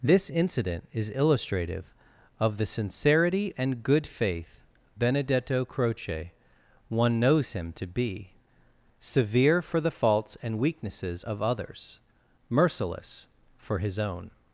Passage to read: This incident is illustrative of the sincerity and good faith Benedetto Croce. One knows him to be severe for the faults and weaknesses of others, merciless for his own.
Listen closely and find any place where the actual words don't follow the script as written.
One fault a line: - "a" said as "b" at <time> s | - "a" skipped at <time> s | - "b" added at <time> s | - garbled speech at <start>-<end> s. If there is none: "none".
none